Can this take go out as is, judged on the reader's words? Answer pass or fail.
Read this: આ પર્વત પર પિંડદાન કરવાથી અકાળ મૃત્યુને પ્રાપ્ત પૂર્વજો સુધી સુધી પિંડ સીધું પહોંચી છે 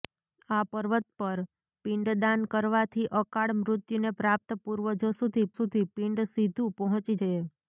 pass